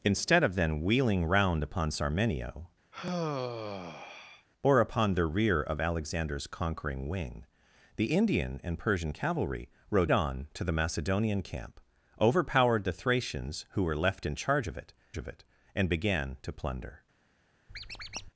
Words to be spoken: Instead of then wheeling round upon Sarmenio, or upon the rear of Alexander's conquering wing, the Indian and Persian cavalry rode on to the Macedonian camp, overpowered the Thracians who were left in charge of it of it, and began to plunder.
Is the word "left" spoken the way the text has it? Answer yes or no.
yes